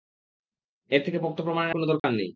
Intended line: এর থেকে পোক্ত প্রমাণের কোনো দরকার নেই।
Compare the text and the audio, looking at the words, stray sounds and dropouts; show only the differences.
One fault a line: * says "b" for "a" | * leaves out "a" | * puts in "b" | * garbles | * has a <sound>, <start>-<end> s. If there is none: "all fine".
* has a dropout, 2.0-2.0 s